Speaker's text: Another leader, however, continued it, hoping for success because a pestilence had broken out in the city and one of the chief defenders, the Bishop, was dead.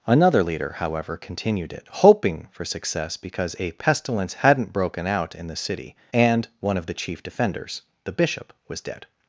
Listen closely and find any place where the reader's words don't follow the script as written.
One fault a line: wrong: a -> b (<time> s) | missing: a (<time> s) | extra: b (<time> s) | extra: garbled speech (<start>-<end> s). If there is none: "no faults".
wrong: had -> hadn't (4.3 s)